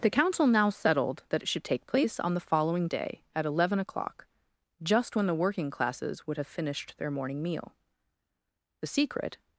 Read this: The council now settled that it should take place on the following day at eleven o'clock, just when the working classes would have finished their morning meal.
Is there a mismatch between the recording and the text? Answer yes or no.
yes